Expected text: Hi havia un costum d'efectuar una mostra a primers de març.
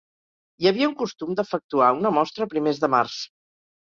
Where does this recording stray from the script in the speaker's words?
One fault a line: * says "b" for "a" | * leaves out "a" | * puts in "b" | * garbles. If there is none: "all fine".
all fine